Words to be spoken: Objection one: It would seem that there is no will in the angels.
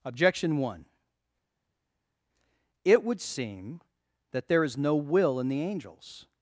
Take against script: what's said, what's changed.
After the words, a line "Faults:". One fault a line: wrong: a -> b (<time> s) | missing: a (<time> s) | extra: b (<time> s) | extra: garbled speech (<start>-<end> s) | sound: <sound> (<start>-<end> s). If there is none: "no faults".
Objection one: It would seem that there is no will in the angels.
Faults:
no faults